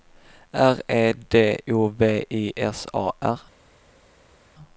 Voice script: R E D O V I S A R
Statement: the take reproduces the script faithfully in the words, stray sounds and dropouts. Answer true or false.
true